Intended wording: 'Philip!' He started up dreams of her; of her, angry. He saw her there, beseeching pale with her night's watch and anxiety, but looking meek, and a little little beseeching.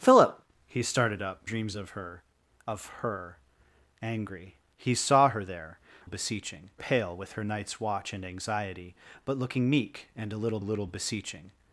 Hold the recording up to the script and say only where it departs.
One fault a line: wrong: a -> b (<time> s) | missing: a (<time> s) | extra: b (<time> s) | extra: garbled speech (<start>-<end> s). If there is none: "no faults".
no faults